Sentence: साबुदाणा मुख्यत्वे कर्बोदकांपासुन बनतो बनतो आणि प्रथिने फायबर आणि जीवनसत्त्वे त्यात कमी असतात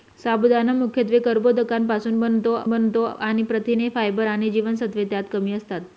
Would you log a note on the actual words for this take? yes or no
no